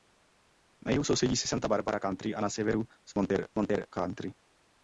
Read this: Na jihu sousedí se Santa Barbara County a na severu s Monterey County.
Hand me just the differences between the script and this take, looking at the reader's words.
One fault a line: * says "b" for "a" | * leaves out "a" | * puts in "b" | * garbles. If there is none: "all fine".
* puts in "Monterey"